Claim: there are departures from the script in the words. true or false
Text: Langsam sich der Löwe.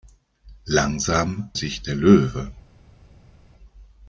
false